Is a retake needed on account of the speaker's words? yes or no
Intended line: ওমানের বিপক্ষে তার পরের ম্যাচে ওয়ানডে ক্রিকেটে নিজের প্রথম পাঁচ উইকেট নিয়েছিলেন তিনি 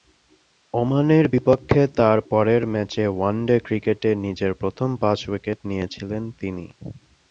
no